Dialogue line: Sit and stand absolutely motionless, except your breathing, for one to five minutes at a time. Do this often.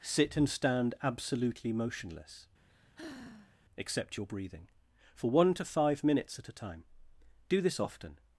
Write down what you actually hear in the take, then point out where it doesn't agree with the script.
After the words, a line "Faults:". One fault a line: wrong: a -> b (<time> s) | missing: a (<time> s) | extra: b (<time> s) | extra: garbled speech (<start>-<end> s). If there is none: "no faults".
Sit and stand absolutely motionless, except your breathing, for one to five minutes at a time. Do this often.
Faults:
no faults